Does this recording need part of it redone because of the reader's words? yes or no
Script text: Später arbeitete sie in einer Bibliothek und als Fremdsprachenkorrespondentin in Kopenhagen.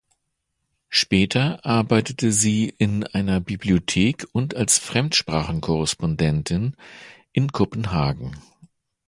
no